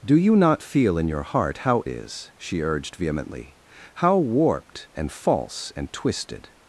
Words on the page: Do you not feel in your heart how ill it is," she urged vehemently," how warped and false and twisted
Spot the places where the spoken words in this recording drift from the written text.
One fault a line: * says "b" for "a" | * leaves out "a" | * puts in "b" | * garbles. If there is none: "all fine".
* leaves out "ill it"